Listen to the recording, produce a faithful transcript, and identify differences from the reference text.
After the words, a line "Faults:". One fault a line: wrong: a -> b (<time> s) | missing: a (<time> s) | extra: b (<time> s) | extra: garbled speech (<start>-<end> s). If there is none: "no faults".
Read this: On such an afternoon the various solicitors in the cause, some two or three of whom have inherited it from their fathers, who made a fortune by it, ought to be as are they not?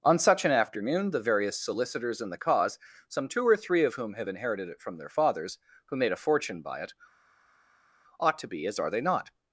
On such an afternoon the various solicitors in the cause, some two or three of whom have inherited it from their fathers, who made a fortune by it, ought to be as are they not?
Faults:
no faults